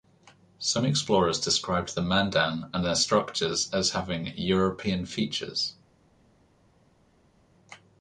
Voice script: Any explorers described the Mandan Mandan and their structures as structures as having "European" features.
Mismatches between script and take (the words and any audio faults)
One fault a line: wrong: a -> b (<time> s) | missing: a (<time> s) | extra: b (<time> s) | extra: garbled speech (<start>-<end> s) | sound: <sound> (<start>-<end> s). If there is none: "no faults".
wrong: Any -> Some (0.6 s)
missing: Mandan (2.7 s)
missing: structures as (3.9 s)